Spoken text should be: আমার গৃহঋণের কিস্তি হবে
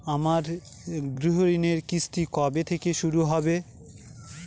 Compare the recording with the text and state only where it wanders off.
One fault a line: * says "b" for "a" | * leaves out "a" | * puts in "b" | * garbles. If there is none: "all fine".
* puts in "কবে থেকে শুরু"